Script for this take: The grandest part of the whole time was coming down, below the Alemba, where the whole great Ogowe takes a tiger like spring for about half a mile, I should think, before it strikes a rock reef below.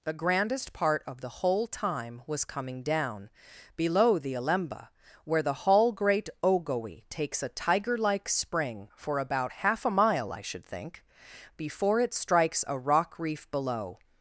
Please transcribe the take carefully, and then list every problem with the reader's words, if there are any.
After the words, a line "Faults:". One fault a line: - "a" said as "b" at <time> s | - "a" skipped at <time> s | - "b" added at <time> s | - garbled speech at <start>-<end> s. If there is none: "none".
The grandest part of the whole time was coming down, below the Alemba, where the hall great Ogowe takes a tiger like spring for about half a mile, I should think, before it strikes a rock reef below.
Faults:
- "whole" said as "hall" at 5.5 s